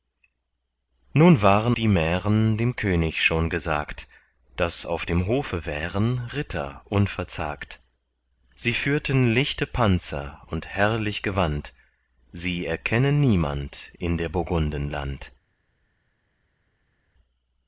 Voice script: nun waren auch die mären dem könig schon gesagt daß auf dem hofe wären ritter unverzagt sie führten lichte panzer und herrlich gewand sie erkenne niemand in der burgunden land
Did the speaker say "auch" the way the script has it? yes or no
no